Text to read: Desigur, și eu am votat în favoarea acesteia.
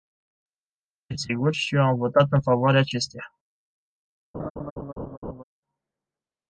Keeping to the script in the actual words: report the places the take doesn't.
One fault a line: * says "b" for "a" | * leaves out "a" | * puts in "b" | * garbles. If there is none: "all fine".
all fine